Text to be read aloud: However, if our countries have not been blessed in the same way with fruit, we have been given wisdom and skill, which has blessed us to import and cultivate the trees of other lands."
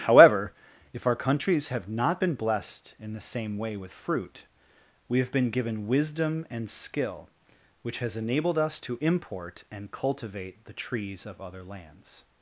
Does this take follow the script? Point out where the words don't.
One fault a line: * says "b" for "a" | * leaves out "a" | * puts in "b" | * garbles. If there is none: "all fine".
* says "enabled" for "blessed"